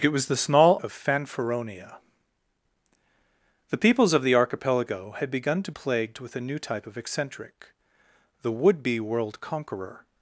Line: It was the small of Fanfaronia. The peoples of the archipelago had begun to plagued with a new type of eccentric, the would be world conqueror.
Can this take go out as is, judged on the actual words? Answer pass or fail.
pass